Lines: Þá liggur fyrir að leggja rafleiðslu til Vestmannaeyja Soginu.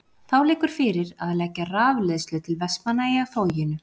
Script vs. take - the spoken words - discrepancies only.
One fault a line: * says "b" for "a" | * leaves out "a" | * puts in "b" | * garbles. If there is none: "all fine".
all fine